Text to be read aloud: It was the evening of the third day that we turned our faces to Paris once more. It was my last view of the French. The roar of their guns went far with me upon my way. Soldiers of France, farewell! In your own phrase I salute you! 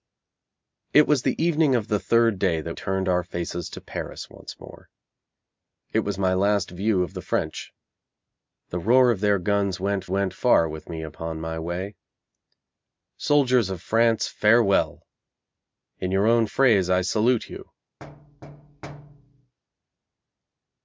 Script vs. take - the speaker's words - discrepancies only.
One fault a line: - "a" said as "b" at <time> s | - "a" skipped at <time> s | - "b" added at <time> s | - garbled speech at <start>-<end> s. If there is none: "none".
- "we" skipped at 2.8 s
- "went" added at 10.1 s